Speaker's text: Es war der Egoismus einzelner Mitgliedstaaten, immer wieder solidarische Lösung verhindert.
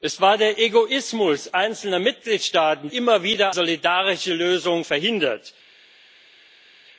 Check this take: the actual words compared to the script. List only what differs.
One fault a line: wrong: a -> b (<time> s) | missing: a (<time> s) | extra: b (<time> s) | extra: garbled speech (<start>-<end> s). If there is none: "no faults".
no faults